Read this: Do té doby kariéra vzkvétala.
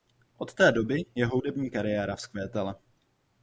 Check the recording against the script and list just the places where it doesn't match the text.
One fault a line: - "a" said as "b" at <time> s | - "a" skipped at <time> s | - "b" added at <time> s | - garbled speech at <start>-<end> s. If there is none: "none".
- "Do" said as "Od" at 0.4 s
- "jeho hudební" added at 1.1 s